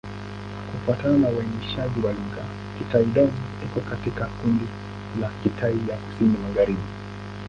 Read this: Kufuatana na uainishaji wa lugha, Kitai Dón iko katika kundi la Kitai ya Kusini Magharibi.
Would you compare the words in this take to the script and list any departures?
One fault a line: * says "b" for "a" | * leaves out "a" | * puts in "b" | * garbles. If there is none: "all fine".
all fine